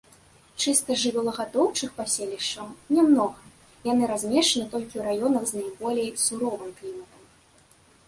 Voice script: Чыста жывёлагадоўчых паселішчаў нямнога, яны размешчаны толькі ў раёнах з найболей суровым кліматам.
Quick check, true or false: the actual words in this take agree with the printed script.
true